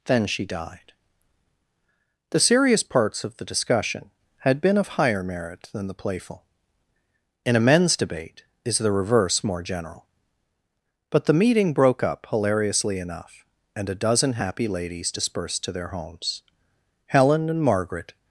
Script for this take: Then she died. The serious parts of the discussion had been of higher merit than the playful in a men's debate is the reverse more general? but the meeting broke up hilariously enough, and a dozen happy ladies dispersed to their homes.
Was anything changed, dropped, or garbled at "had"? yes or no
no